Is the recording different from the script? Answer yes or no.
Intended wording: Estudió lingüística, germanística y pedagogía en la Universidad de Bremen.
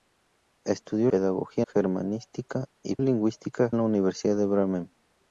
yes